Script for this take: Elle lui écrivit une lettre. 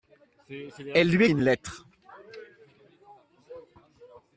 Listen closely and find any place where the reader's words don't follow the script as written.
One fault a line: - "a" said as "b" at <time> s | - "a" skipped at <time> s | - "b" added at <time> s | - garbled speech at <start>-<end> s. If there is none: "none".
- "écrivit" skipped at 1.2 s